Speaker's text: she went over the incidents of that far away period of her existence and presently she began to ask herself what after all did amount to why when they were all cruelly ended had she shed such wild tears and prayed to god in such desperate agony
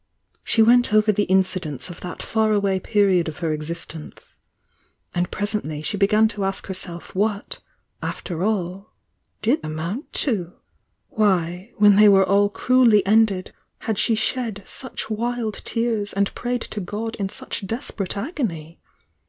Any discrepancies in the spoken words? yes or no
no